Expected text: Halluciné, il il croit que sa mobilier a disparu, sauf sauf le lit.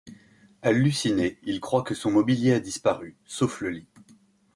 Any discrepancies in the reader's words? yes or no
yes